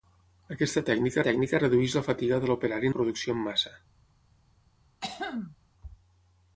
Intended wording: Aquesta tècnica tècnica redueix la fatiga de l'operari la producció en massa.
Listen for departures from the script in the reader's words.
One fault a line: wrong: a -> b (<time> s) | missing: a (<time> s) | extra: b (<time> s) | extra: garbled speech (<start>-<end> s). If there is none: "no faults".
no faults